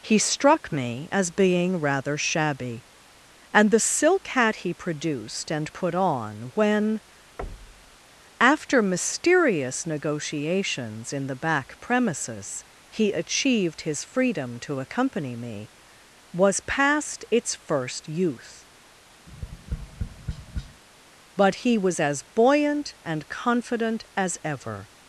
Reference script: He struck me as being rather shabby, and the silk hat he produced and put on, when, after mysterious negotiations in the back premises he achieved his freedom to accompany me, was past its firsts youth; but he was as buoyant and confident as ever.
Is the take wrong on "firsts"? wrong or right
wrong